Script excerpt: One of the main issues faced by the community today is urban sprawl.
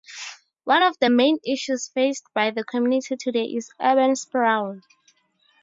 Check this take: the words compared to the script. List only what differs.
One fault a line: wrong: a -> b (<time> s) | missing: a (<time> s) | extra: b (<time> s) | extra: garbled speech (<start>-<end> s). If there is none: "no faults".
no faults